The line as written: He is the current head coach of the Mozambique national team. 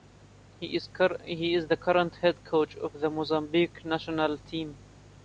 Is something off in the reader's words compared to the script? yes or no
no